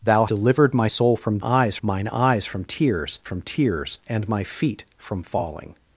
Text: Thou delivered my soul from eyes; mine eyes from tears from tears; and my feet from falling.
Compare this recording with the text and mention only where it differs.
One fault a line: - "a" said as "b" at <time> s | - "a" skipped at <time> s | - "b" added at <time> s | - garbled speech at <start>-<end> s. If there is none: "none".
none